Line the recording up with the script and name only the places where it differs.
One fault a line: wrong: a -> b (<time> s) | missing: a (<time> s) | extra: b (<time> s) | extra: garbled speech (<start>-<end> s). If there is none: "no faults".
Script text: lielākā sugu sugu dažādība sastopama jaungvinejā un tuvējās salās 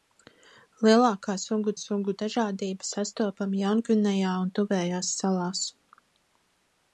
no faults